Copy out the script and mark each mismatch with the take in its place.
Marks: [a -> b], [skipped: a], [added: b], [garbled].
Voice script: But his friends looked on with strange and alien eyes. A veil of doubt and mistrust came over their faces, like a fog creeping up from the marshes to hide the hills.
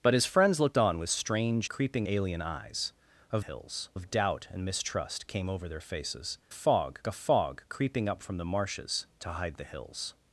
But his friends looked on with strange [and -> creeping] alien eyes. A [veil -> hills] of doubt and mistrust came over their faces, [like -> fog] a fog creeping up from the marshes to hide the hills.